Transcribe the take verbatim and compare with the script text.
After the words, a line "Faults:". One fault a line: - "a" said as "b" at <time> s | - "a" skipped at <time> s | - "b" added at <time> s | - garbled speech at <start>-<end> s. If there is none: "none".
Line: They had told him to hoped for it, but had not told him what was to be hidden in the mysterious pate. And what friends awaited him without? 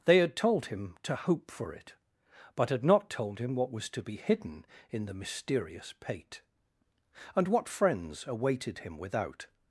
They had told him to hope for it, but had not told him what was to be hidden in the mysterious pate. And what friends awaited him without?
Faults:
- "hoped" said as "hope" at 1.1 s